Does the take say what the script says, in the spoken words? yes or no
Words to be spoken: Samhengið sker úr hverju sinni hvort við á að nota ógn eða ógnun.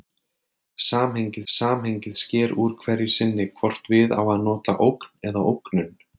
no